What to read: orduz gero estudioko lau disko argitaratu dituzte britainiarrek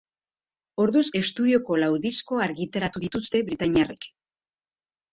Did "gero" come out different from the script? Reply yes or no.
yes